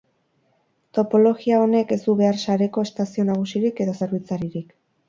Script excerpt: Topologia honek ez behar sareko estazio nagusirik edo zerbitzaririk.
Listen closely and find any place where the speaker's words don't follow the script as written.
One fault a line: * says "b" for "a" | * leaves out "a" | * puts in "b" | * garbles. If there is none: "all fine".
* puts in "du"